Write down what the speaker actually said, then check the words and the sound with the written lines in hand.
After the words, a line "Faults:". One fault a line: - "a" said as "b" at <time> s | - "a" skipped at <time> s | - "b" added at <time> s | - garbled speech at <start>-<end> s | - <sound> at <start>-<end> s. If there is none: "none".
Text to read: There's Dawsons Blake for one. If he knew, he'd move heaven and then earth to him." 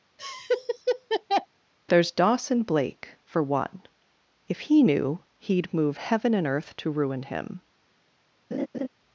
There's Dawson Blake for one. If he knew, he'd move heaven and earth to ruin him."
Faults:
- laugh at 0.2-1.5 s
- "Dawsons" said as "Dawson" at 2.1 s
- "then" skipped at 6.5 s
- "ruin" added at 6.9 s
- laugh at 8.5-8.9 s